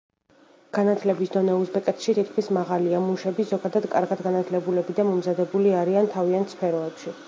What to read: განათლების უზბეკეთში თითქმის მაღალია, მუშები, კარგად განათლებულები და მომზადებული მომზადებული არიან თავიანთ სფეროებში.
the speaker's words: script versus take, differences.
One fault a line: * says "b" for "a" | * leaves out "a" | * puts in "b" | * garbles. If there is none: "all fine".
* puts in "დონე"
* puts in "ზოგადად"
* leaves out "მომზადებული"